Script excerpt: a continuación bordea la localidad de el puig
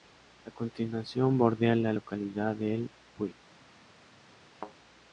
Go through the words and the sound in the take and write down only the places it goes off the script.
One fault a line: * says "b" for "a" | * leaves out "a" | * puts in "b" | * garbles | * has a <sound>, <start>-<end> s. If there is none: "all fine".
* has a thud, 4.5-4.8 s